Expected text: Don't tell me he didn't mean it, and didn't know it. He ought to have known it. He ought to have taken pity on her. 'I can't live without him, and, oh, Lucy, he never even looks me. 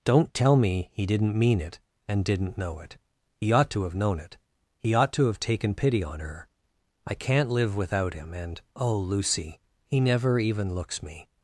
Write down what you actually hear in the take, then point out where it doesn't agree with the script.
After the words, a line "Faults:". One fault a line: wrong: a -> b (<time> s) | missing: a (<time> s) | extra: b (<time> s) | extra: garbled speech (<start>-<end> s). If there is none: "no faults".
Don't tell me he didn't mean it, and didn't know it. He ought to have known it. He ought to have taken pity on her. 'I can't live without him, and, oh, Lucy, he never even looks me.
Faults:
no faults